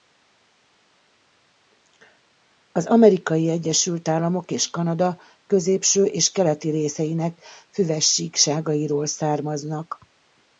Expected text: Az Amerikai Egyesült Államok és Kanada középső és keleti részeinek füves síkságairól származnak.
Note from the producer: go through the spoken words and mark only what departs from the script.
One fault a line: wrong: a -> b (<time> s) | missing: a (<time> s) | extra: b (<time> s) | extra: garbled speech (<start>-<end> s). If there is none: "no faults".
no faults